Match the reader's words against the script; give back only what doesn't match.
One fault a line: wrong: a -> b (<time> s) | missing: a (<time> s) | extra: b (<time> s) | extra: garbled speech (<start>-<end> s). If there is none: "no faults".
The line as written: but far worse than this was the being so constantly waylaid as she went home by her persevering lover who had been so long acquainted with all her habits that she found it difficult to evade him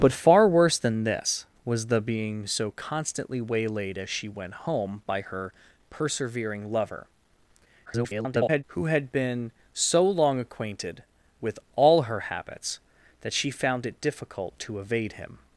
extra: garbled speech (7.9-8.6 s)